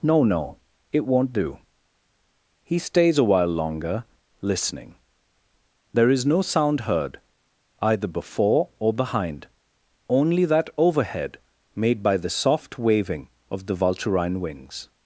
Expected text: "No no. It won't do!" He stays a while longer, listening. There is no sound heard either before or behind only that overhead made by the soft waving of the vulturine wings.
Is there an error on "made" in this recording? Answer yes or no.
no